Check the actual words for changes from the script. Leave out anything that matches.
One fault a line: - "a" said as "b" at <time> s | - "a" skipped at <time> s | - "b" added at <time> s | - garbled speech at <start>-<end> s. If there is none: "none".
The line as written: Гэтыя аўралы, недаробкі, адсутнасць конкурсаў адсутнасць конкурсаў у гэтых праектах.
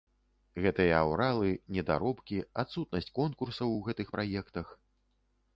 - "адсутнасць конкурсаў" skipped at 3.7 s